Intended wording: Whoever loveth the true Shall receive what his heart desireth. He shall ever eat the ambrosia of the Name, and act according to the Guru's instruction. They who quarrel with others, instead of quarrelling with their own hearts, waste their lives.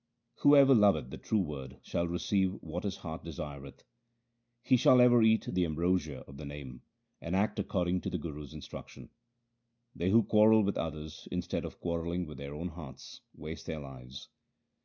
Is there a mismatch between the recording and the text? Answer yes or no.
yes